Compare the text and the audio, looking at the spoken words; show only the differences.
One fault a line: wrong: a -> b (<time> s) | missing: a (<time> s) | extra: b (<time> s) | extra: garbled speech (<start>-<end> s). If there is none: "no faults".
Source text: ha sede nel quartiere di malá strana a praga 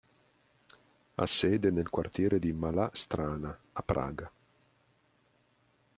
no faults